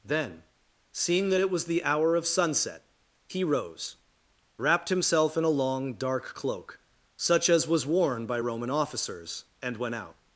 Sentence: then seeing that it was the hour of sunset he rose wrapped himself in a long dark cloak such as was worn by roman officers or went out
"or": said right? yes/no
no